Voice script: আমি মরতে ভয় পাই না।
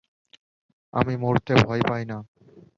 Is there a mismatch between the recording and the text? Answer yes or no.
no